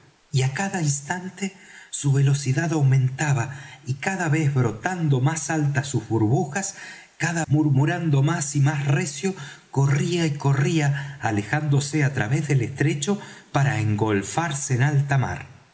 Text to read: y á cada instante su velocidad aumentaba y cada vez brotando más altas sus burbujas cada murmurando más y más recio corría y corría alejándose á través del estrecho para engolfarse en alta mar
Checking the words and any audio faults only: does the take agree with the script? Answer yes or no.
yes